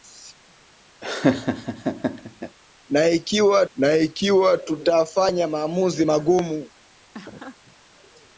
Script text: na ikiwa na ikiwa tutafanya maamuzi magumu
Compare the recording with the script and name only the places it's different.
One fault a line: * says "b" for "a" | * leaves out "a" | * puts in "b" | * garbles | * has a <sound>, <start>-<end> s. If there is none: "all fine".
* has a laugh, 1.0-2.6 s
* has a laugh, 7.1-7.8 s